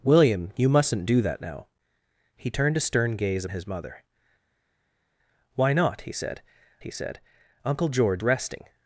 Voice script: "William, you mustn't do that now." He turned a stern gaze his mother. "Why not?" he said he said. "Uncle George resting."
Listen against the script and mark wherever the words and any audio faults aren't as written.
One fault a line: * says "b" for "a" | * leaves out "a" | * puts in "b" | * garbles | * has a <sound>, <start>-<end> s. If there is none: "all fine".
all fine